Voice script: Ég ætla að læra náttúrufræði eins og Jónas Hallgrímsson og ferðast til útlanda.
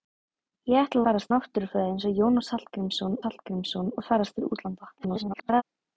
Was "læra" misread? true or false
true